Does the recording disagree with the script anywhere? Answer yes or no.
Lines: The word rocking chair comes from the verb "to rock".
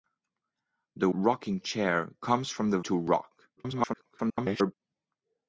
yes